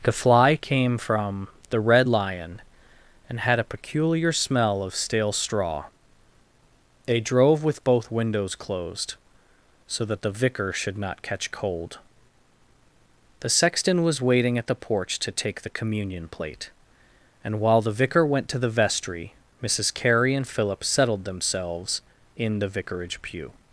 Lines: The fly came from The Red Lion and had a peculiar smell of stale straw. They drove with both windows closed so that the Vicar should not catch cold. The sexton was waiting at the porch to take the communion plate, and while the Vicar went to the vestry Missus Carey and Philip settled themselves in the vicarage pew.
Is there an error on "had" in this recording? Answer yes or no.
no